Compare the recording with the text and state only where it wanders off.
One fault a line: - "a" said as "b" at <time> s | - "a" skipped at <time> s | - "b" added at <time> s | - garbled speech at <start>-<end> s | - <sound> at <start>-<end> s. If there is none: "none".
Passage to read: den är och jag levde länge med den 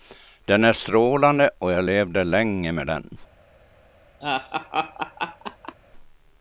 - "strålande" added at 0.7 s
- laugh at 4.2-5.7 s